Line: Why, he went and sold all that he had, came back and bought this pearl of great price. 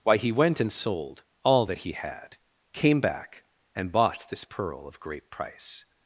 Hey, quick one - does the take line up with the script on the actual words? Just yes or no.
yes